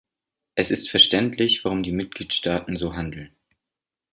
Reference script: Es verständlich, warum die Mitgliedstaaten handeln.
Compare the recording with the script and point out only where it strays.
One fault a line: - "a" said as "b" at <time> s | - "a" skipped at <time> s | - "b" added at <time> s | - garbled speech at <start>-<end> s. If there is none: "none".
- "ist" added at 0.7 s
- "so" added at 2.8 s